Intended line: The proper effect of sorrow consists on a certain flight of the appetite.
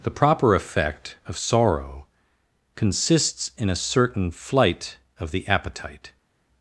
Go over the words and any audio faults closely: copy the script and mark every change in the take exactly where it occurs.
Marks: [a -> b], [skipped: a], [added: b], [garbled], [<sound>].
The proper effect of sorrow consists [on -> in] a certain flight of the appetite.